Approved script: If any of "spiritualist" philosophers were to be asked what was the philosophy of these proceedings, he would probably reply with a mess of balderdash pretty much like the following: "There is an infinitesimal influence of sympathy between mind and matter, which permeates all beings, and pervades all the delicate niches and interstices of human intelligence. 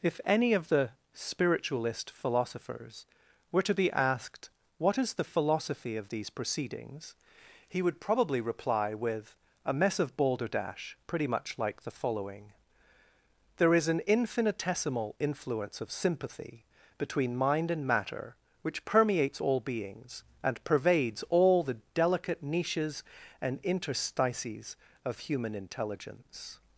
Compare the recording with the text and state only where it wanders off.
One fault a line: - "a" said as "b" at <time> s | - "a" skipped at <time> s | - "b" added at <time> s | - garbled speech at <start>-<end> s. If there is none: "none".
- "the" added at 0.7 s
- "was" said as "is" at 5.0 s